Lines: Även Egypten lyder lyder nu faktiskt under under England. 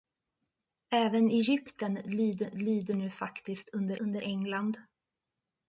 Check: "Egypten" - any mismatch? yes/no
no